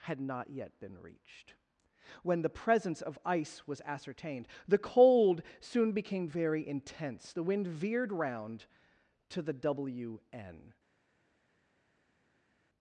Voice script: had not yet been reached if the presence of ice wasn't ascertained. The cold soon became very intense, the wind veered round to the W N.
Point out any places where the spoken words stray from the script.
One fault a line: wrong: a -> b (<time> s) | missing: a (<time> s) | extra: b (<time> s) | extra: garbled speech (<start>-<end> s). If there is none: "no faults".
wrong: if -> when (2.2 s)
wrong: wasn't -> was (3.7 s)